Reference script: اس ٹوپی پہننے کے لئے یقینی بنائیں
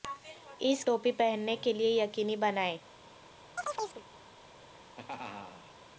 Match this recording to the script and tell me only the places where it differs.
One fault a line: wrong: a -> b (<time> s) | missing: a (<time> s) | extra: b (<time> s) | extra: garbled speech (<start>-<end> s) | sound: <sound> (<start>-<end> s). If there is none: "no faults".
sound: chirp (3.6-4.1 s)
sound: laugh (4.6-5.8 s)